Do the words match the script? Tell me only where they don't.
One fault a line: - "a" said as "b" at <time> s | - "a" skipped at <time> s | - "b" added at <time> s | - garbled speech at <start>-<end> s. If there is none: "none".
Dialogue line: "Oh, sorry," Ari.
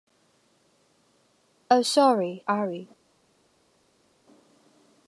none